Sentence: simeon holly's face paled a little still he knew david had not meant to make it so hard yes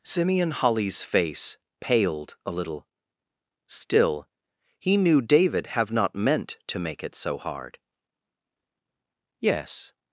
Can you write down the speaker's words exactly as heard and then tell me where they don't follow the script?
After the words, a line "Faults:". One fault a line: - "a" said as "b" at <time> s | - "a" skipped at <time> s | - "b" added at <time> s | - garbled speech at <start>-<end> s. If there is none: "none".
simeon holly's face paled a little still he knew david have not meant to make it so hard yes
Faults:
- "had" said as "have" at 5.7 s